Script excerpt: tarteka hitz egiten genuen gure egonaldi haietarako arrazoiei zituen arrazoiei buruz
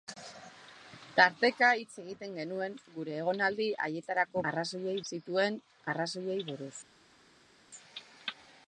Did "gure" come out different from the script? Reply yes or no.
no